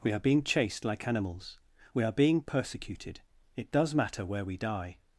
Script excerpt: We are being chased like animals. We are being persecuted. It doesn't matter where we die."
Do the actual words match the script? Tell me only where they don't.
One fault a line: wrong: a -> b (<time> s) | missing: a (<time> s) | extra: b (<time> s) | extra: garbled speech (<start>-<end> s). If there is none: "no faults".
wrong: doesn't -> does (3.7 s)